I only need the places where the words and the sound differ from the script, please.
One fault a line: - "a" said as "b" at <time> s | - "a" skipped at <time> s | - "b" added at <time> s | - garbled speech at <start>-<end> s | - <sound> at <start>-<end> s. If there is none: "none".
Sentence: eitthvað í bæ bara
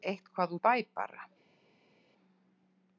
none